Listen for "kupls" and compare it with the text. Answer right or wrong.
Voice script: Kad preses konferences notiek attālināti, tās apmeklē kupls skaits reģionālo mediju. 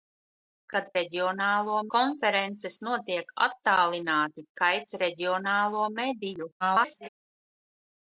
wrong